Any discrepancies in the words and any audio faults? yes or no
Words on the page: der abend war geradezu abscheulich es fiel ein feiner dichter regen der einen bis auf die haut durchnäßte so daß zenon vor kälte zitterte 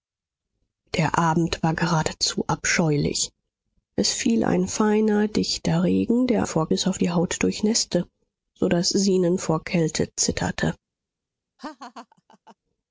yes